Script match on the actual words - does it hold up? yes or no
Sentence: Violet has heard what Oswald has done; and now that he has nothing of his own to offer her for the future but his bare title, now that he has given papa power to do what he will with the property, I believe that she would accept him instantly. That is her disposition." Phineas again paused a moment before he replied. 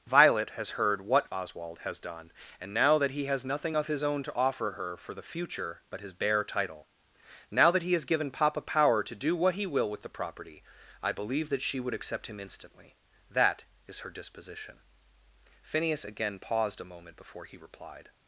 yes